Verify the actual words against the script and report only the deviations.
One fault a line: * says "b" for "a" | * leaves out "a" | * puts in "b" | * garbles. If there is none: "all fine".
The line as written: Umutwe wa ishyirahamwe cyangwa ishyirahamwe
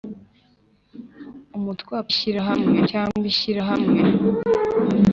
all fine